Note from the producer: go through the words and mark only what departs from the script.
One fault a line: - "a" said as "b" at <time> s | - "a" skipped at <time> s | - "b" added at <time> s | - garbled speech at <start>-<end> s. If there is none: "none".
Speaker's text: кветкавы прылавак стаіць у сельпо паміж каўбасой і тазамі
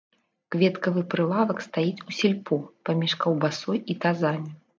none